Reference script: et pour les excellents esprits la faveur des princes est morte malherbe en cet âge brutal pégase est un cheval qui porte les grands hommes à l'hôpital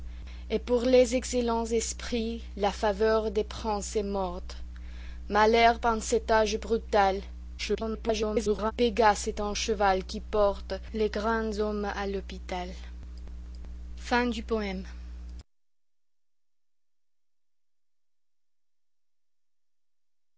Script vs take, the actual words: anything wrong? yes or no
yes